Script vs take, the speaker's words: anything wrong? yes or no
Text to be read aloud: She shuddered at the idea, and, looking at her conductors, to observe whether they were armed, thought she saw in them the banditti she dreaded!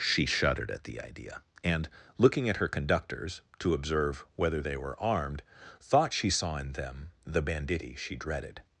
no